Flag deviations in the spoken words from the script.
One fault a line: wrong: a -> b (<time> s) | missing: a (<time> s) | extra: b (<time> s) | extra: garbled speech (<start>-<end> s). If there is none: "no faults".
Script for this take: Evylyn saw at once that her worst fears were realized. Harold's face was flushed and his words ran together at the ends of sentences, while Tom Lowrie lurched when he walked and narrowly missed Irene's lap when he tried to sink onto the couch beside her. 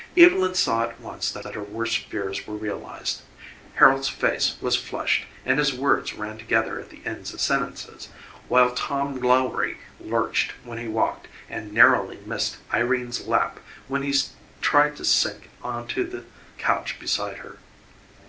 extra: that (1.4 s)